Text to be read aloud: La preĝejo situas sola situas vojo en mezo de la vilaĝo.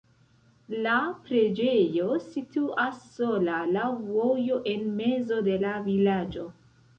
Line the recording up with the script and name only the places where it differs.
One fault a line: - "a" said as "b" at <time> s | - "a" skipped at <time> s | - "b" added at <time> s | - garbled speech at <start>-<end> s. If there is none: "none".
- "situas" said as "laŭ" at 3.7 s